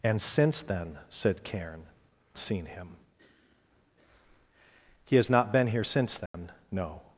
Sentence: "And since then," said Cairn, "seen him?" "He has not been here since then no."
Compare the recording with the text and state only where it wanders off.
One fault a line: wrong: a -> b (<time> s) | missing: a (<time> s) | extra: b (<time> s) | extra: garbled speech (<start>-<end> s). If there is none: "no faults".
no faults